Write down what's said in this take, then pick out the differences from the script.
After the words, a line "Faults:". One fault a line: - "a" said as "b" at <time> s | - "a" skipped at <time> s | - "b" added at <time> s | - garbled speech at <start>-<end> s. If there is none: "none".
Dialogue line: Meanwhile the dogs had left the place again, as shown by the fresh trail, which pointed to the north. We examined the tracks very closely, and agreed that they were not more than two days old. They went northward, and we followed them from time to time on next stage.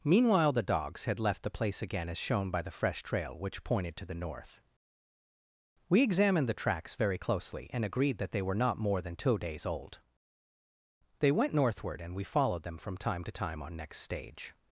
Meanwhile the dogs had left the place again, as shown by the fresh trail, which pointed to the north. We examined the tracks very closely, and agreed that they were not more than two days old. They went northward, and we followed them from time to time on next stage.
Faults:
none